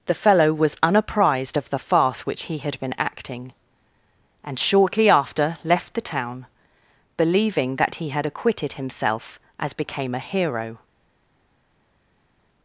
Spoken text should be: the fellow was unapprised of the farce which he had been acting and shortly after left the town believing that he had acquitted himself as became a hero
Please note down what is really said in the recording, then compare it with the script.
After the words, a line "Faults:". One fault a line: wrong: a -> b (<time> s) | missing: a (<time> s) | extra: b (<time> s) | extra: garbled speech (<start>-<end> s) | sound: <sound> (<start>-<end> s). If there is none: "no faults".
the fellow was unapprised of the farce which he had been acting and shortly after left the town believing that he had acquitted himself as became a hero
Faults:
no faults